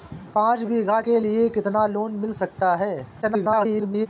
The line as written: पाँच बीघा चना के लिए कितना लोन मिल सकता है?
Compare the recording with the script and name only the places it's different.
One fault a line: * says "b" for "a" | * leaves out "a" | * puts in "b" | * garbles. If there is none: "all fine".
* leaves out "चना"
* garbles